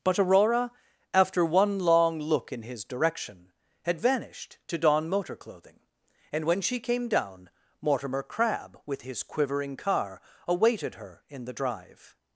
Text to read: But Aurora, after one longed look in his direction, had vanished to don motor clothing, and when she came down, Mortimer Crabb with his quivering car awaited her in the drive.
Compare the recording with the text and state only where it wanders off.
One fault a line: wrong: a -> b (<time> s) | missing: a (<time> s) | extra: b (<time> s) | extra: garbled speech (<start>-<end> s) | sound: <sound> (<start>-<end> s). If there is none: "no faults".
wrong: longed -> long (1.8 s)